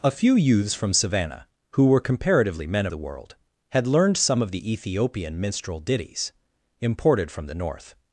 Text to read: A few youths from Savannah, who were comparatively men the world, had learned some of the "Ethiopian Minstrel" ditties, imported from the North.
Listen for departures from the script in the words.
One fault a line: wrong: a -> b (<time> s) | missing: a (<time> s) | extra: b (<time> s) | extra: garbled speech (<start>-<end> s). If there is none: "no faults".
no faults